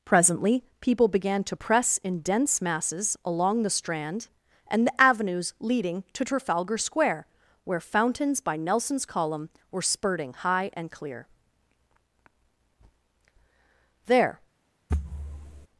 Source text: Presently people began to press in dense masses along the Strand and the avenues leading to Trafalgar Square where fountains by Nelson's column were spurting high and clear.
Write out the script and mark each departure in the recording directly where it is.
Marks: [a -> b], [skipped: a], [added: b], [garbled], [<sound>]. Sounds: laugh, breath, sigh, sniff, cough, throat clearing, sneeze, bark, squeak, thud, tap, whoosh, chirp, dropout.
Presently people began to press in dense masses along the Strand and the avenues leading to Trafalgar Square where fountains by Nelson's column were spurting high and clear. [added: There] [thud]